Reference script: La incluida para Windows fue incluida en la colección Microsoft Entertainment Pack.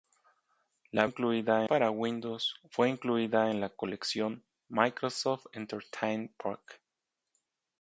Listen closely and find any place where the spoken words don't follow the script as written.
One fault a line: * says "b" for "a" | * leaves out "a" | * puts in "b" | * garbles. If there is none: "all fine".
all fine